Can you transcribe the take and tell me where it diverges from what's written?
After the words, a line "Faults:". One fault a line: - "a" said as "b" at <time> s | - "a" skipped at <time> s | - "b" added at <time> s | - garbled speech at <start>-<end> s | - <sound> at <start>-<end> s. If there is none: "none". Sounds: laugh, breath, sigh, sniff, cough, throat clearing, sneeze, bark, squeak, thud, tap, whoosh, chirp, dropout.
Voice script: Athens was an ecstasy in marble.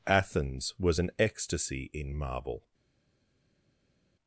Athens was an ecstasy in marble.
Faults:
none